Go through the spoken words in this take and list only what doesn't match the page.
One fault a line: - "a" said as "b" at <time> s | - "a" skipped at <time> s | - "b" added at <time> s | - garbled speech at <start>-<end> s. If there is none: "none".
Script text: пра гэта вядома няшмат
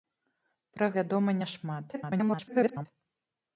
- "гэта" skipped at 0.9 s
- garbled speech at 1.9-2.9 s